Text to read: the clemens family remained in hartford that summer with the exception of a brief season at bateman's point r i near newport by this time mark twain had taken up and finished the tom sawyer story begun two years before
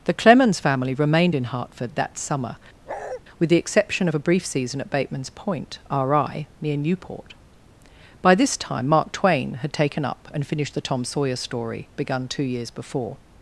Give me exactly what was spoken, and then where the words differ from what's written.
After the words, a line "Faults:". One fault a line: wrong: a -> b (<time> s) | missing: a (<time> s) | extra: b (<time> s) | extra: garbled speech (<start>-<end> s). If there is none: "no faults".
the clemens family remained in hartford that summer with the exception of a brief season at bateman's point r i near newport by this time mark twain had taken up and finished the tom sawyer story begun two years before
Faults:
no faults